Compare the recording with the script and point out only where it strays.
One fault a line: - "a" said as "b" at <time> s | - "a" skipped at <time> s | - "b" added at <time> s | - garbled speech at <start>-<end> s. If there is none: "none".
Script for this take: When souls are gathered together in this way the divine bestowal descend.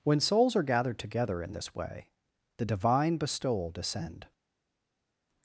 none